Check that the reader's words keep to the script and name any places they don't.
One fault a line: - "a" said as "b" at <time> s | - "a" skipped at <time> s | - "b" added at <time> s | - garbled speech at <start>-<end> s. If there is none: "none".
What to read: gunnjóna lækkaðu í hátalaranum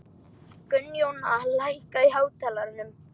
none